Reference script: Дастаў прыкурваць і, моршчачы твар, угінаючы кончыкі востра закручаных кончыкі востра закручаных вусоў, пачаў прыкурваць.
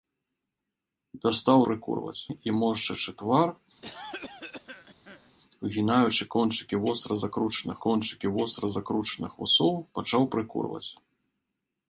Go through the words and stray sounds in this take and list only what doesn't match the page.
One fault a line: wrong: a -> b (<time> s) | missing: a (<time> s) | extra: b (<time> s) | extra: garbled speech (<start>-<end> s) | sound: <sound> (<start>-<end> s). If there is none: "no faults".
sound: cough (3.8-5.3 s)